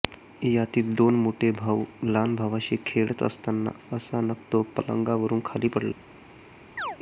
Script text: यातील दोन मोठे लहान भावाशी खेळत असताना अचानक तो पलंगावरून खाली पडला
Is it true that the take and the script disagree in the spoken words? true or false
true